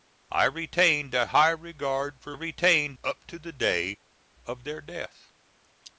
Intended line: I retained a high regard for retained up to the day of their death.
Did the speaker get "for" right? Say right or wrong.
right